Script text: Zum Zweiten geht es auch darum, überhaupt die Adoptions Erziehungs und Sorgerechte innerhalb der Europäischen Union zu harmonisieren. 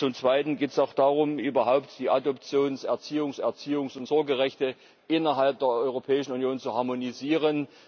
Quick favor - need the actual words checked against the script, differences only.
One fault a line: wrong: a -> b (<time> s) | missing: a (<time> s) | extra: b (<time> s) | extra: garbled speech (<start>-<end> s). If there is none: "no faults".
extra: Erziehungs (3.4 s)